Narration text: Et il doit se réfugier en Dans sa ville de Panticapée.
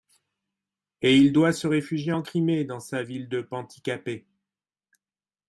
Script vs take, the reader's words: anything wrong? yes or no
yes